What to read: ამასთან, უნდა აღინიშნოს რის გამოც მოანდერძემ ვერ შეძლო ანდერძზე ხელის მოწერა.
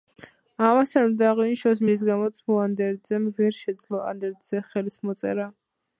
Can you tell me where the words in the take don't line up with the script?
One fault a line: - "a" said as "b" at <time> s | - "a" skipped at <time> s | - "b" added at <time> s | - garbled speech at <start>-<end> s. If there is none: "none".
none